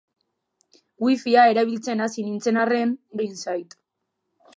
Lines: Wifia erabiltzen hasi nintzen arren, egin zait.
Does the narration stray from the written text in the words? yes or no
no